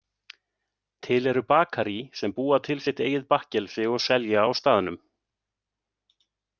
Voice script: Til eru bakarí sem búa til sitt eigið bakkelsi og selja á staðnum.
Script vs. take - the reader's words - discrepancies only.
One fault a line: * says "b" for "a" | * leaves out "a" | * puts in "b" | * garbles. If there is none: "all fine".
all fine